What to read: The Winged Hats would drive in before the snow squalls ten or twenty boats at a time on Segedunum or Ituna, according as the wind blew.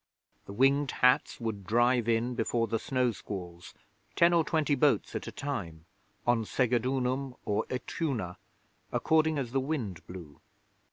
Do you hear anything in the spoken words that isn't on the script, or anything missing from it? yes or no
no